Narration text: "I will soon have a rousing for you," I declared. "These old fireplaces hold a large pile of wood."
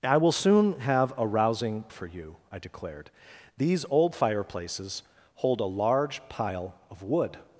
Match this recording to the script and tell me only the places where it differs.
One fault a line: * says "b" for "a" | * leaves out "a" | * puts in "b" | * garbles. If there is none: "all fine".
all fine